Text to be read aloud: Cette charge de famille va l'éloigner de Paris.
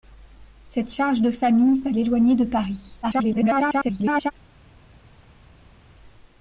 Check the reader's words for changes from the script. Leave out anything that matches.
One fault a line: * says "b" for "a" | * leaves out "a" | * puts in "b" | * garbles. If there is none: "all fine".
* garbles